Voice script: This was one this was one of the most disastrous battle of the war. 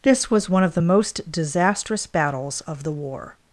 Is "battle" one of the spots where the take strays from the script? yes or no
yes